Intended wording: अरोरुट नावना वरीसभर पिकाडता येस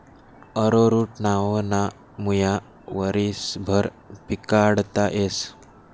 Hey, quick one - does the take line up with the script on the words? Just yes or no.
no